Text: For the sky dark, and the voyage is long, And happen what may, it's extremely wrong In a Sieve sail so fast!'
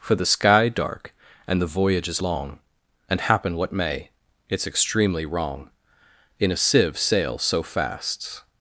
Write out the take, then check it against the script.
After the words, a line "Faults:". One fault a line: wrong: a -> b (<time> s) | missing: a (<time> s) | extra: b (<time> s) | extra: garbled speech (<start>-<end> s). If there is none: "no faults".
For the sky dark, and the voyage is long, And happen what may, it's extremely wrong In a Sieve sail so fast!'
Faults:
no faults